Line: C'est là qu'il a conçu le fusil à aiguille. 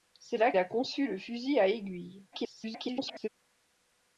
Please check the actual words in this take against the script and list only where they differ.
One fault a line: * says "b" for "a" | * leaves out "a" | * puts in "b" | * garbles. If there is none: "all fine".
* leaves out "qu'il"
* garbles